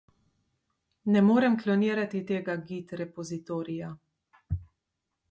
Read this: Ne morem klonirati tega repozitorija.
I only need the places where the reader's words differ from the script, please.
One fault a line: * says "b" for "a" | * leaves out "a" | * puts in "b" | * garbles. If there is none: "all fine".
* puts in "git"